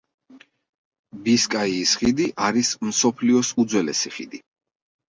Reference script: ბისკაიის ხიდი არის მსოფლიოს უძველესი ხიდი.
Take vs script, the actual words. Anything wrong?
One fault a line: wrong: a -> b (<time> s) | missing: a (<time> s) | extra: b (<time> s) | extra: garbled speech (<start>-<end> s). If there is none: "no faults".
no faults